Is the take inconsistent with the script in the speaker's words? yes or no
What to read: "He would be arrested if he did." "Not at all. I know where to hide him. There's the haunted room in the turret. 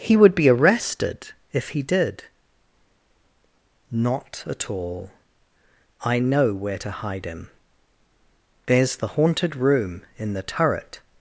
no